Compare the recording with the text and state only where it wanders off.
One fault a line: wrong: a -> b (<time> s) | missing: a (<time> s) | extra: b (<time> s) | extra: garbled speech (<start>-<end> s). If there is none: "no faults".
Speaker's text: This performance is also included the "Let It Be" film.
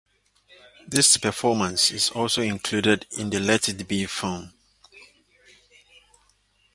extra: in (3.2 s)